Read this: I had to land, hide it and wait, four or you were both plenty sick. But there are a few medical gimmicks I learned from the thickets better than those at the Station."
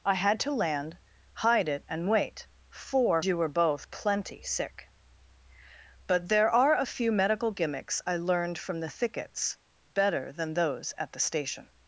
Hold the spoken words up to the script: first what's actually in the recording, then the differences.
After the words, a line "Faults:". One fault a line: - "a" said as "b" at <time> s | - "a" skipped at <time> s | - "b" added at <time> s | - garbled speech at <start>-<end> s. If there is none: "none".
I had to land, hide it and wait, four or you were both plenty sick. But there are a few medical gimmicks I learned from the thickets better than those at the Station."
Faults:
none